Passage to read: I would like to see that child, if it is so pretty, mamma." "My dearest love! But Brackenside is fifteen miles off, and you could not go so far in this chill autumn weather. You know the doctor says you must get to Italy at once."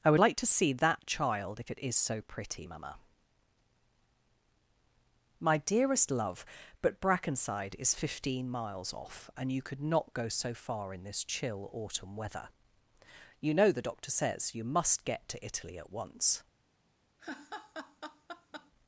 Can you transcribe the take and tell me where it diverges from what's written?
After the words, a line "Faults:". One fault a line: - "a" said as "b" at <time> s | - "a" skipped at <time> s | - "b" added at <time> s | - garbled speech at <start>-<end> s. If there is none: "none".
I would like to see that child, if it is so pretty, mamma." "My dearest love! But Brackenside is fifteen miles off, and you could not go so far in this chill autumn weather. You know the doctor says you must get to Italy at once."
Faults:
none